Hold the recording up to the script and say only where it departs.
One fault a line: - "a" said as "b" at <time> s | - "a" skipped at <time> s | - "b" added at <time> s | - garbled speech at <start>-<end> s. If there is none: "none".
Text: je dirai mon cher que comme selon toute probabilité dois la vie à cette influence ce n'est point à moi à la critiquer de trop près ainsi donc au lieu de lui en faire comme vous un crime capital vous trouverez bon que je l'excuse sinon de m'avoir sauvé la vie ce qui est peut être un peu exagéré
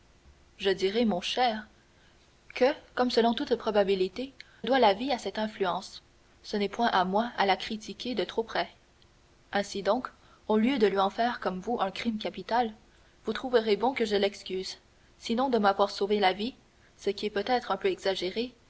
none